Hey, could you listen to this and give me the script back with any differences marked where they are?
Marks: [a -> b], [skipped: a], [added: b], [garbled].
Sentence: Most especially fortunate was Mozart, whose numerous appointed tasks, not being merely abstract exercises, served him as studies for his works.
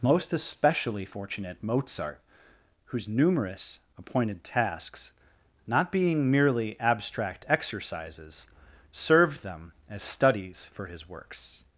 Most especially fortunate [skipped: was] Mozart, whose numerous appointed tasks, not being merely abstract exercises, served [him -> them] as studies for his works.